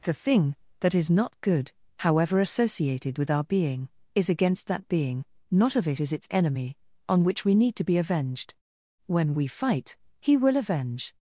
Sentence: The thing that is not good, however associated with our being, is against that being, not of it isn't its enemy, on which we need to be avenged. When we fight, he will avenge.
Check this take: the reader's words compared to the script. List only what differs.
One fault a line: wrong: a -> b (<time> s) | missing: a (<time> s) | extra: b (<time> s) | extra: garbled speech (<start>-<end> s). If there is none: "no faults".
wrong: isn't -> is (6.0 s)